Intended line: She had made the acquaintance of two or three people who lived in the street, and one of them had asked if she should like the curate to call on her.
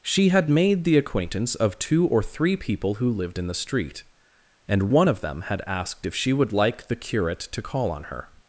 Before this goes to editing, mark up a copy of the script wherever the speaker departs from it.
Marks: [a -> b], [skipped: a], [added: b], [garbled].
She had made the acquaintance of two or three people who lived in the street, and one of them had asked if she [should -> would] like the curate to call on her.